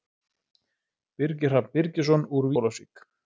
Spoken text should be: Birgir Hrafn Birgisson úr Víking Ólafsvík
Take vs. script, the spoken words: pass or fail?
fail